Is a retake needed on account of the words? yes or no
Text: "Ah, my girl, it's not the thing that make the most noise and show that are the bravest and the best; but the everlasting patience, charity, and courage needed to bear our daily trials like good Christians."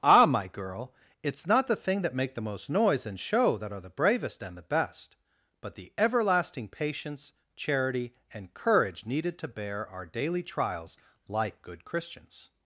no